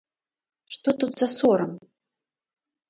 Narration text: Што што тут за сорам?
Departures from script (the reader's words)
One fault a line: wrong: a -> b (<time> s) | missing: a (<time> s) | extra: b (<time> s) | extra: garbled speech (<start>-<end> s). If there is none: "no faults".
missing: што (0.9 s)